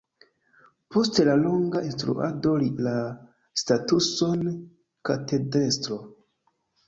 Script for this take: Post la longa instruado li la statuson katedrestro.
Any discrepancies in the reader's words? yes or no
no